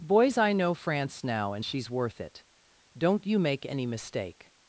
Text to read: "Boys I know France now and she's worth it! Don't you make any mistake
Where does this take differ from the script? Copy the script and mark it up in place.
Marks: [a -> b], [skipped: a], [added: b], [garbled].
"Boys I know France now and she's worth it! Don't you make any mistake